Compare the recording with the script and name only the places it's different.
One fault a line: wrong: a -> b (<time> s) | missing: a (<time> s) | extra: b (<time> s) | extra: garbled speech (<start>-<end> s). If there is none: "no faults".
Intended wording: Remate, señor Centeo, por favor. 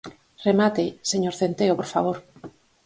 no faults